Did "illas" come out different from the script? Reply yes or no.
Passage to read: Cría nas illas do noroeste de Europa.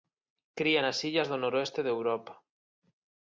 no